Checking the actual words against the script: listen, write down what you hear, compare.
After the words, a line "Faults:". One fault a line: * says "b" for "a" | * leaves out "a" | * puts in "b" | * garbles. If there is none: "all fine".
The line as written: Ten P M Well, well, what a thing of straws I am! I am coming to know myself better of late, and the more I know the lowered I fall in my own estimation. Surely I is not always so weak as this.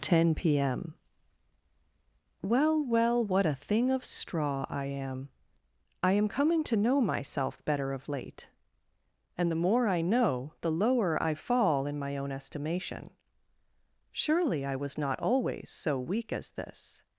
Ten P M Well, well, what a thing of straw I am! I am coming to know myself better of late, and the more I know the lower I fall in my own estimation. Surely I was not always so weak as this.
Faults:
* says "straw" for "straws"
* says "lower" for "lowered"
* says "was" for "is"